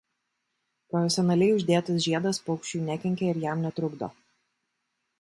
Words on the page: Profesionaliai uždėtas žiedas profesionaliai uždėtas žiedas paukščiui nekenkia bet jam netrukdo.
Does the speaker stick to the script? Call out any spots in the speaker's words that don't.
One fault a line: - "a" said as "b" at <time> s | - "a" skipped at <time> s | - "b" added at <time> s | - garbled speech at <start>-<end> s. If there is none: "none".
- "profesionaliai uždėtas žiedas" skipped at 2.4 s
- "bet" said as "ir" at 3.4 s